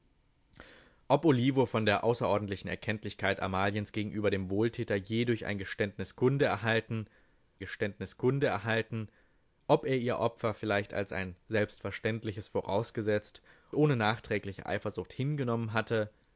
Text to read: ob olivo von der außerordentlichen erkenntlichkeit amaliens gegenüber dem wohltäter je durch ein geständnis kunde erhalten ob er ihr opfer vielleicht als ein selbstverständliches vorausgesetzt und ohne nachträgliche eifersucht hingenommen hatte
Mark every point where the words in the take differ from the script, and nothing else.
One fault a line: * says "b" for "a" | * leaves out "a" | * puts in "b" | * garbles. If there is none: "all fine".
* puts in "geständnis kunde erhalten"
* leaves out "und"